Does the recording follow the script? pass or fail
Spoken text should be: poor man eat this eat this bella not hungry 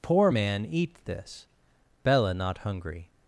fail